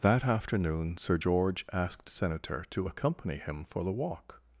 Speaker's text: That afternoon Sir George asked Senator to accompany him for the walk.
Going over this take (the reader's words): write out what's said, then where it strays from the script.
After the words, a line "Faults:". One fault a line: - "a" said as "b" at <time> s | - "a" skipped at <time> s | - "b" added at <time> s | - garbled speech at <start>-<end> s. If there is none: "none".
That afternoon Sir George asked Senator to accompany him for the walk.
Faults:
none